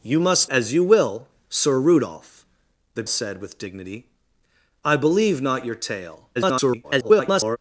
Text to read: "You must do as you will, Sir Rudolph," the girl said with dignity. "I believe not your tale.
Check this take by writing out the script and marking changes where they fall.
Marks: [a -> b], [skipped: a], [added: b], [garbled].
"You must [skipped: do] as you will, Sir Rudolph," the [skipped: girl] said with dignity. "I believe not your tale. [garbled]